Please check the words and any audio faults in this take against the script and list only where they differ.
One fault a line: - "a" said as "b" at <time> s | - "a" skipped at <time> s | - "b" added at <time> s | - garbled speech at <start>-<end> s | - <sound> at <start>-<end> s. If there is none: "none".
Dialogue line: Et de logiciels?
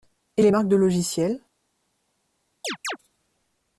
- "les marques" added at 0.4 s
- chirp at 2.6-3.0 s